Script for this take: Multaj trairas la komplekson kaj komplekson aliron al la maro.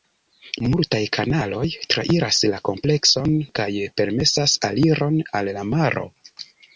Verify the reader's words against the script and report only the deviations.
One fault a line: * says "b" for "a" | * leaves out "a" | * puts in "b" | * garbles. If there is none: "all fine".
* puts in "kanaloj"
* says "permesas" for "komplekson"